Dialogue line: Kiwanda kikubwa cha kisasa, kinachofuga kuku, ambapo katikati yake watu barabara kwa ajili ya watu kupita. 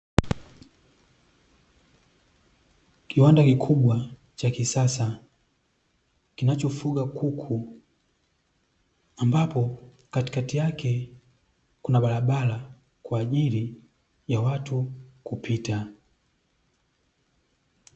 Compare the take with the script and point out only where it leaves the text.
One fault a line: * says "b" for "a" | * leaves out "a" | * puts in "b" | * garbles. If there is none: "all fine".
* says "kuna" for "watu"